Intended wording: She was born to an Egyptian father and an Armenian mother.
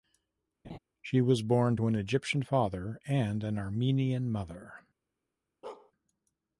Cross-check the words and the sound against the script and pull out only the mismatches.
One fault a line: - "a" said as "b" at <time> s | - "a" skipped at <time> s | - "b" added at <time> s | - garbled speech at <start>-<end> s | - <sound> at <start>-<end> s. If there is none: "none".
- laugh at 0.6-0.8 s
- bark at 5.6-5.9 s